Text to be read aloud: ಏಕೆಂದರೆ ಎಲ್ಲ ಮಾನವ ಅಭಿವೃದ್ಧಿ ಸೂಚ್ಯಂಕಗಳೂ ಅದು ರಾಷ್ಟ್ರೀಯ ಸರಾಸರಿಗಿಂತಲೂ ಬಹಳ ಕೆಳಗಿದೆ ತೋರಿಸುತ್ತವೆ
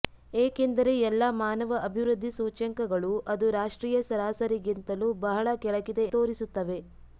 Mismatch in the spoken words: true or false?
false